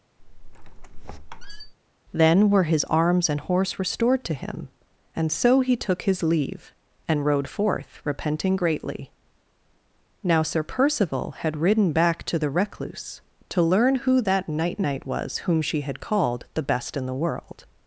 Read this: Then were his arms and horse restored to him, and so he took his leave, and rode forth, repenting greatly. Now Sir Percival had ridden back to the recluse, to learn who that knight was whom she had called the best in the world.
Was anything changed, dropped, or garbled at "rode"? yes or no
no